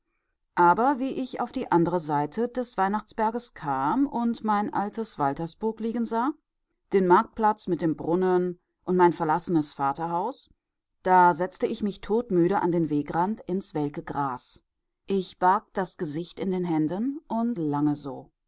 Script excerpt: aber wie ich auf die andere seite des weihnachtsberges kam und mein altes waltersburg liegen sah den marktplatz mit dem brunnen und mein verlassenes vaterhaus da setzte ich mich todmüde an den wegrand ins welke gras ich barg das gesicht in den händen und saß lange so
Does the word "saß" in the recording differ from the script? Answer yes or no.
yes